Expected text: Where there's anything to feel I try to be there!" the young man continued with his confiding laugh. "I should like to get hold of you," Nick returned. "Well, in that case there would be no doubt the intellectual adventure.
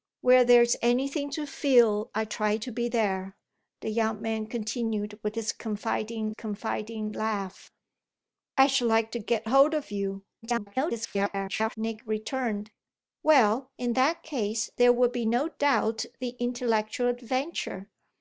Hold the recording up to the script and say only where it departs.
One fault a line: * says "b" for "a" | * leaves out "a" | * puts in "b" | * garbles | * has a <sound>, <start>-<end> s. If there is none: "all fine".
* puts in "confiding"
* garbles